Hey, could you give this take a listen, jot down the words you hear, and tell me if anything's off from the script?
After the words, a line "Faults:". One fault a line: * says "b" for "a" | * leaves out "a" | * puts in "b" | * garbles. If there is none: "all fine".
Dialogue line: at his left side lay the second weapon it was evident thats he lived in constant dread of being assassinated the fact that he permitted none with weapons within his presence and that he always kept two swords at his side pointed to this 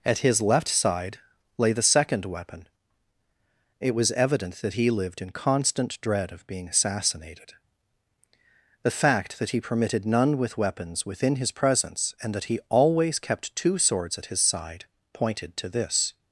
at his left side lay the second weapon it was evident that he lived in constant dread of being assassinated the fact that he permitted none with weapons within his presence and that he always kept two swords at his side pointed to this
Faults:
* says "that" for "thats"